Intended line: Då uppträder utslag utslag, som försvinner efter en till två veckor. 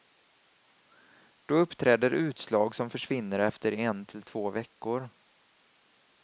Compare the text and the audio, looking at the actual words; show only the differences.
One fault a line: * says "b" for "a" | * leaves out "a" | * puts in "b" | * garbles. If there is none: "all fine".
* leaves out "utslag"